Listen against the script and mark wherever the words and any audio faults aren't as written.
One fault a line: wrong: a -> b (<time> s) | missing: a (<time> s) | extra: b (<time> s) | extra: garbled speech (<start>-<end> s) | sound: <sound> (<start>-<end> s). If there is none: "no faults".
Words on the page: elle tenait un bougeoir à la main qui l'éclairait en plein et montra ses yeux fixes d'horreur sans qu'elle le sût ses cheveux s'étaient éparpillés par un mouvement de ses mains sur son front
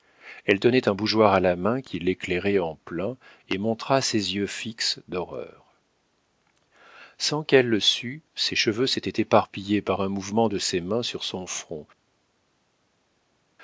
no faults